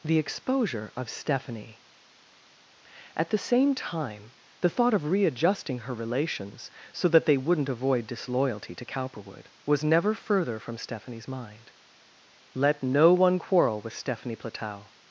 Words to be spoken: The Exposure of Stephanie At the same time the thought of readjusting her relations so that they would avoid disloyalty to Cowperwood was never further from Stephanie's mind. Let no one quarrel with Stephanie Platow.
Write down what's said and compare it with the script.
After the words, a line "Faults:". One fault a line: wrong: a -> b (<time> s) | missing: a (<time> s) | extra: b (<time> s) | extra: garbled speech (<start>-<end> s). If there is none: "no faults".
The Exposure of Stephanie At the same time the thought of readjusting her relations so that they wouldn't avoid disloyalty to Cowperwood was never further from Stephanie's mind. Let no one quarrel with Stephanie Platow.
Faults:
wrong: would -> wouldn't (7.4 s)